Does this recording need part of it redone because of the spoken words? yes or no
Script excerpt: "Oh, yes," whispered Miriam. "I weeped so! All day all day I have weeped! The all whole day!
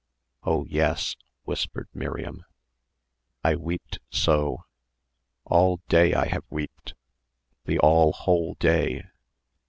yes